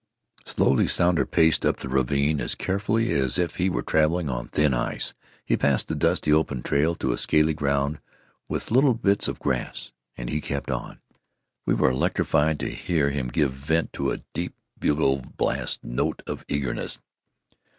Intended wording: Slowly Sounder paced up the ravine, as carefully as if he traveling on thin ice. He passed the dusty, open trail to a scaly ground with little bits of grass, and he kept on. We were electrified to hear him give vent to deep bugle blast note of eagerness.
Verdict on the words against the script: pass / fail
fail